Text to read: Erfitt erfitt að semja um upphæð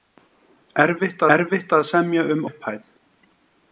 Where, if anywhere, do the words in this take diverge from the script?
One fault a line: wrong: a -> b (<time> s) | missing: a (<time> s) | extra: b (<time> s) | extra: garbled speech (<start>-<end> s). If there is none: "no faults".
no faults